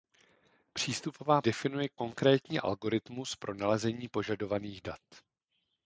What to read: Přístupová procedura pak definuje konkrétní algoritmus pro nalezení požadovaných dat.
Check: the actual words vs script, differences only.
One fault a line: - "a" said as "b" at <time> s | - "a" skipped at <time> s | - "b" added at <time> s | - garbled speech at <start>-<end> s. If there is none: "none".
- "procedura pak" skipped at 1.4 s